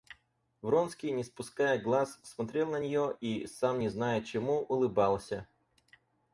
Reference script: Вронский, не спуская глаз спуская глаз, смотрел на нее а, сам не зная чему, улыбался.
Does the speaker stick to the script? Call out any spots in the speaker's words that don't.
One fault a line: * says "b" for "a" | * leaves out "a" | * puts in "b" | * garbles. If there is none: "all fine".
* leaves out "спуская глаз"
* says "и" for "а"